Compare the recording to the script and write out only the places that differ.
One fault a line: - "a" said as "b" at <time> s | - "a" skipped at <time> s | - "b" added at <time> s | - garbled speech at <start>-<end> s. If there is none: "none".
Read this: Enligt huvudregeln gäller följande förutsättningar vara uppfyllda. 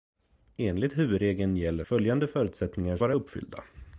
none